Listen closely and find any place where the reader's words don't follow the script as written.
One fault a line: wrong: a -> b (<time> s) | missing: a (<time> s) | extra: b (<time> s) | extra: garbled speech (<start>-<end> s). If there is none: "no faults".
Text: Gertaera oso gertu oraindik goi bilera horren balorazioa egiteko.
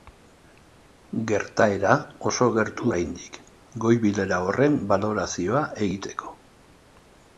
no faults